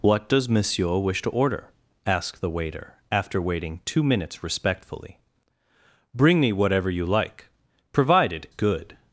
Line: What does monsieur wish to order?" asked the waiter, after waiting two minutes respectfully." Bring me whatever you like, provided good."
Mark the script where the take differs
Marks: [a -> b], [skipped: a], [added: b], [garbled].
What does monsieur wish to order?" asked the waiter, after waiting two minutes respectfully." Bring me whatever you like, provided good."